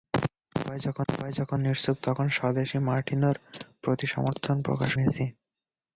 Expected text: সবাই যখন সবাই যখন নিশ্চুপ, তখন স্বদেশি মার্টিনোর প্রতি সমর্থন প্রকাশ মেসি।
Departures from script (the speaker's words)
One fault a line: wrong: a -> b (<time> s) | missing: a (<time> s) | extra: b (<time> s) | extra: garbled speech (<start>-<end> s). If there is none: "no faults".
no faults